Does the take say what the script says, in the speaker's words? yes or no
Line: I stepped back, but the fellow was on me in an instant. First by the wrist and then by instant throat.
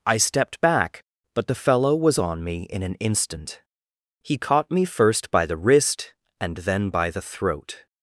no